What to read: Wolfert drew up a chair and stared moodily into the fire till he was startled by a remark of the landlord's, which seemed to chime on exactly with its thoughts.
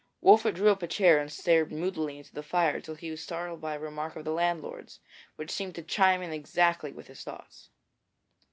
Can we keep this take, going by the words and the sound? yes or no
no